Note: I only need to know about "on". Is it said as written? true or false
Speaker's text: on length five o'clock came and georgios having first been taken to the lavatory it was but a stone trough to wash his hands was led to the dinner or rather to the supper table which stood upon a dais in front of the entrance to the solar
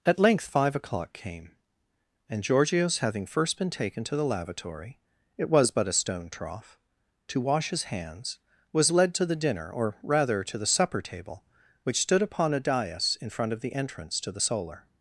false